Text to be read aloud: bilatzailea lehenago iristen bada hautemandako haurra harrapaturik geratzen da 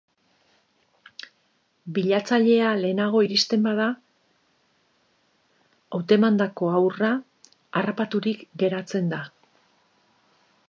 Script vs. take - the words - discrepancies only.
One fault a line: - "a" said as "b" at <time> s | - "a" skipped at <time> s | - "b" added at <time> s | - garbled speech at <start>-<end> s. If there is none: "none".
none